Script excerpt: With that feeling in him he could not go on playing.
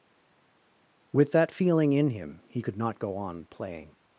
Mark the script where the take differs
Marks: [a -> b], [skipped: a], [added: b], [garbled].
With that feeling in him he could not go on playing.